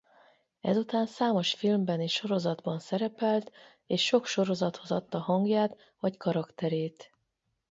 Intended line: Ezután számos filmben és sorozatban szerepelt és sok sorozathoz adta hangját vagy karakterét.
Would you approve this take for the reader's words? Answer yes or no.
yes